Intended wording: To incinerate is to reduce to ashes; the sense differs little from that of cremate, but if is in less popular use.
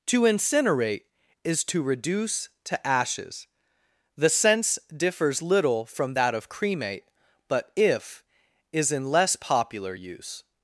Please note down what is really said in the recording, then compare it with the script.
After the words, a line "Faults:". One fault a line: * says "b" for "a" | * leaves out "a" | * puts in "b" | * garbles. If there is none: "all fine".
To incinerate is to reduce to ashes; the sense differs little from that of cremate, but if is in less popular use.
Faults:
all fine